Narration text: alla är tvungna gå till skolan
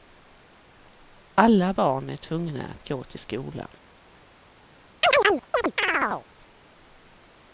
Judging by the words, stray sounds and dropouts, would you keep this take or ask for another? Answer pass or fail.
fail